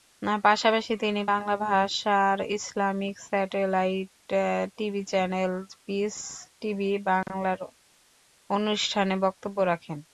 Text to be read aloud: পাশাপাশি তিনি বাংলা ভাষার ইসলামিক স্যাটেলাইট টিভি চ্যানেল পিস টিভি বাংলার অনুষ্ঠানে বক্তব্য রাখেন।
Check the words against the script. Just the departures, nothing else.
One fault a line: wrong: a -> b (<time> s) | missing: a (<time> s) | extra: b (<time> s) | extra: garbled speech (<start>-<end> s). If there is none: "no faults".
no faults